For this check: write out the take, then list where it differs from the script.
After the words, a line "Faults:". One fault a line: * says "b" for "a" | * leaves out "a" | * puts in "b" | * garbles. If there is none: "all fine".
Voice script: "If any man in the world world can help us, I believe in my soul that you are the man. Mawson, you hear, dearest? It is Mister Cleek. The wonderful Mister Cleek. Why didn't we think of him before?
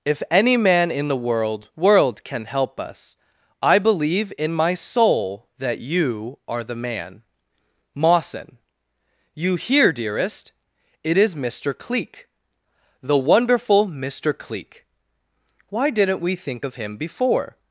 "If any man in the world world can help us, I believe in my soul that you are the man. Mawson, you hear, dearest? It is Mister Cleek. The wonderful Mister Cleek. Why didn't we think of him before?
Faults:
all fine